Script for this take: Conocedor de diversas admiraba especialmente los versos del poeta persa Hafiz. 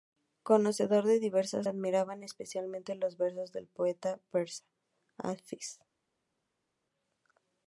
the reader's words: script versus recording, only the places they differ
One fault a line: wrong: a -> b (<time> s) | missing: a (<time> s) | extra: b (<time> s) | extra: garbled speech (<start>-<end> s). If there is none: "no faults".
no faults